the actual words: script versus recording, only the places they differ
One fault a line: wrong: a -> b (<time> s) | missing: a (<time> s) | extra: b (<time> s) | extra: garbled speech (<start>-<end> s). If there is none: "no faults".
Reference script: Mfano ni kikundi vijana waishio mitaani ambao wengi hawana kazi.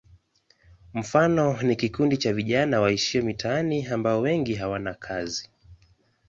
extra: cha (2.2 s)